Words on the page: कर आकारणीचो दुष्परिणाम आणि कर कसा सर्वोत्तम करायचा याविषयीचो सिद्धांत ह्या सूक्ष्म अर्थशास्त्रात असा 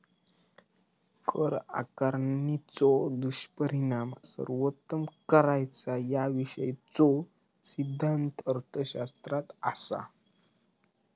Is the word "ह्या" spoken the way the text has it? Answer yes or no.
no